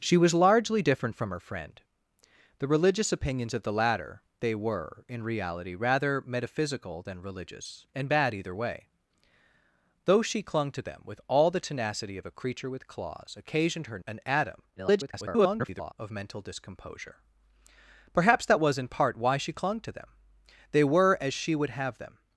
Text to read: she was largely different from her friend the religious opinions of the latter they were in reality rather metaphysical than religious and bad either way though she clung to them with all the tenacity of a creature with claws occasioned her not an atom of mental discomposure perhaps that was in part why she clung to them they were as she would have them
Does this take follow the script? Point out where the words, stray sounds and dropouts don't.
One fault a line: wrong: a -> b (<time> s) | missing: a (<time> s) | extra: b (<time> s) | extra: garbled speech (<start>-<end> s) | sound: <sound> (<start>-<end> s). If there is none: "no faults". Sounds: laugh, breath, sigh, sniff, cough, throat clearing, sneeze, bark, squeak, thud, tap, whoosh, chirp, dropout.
missing: not (14.0 s)
extra: garbled speech (14.8-15.9 s)